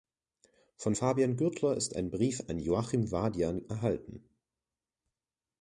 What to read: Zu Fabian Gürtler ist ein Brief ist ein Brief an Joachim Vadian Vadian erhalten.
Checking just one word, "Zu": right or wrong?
wrong